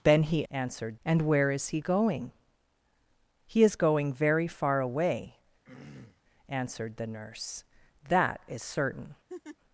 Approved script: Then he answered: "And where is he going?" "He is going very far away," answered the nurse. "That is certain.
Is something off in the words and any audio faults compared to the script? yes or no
yes